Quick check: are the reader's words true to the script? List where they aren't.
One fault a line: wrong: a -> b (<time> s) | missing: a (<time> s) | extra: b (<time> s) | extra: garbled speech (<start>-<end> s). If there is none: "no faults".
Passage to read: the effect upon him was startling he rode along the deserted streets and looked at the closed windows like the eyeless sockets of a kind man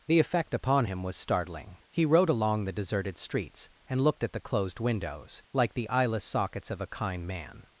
no faults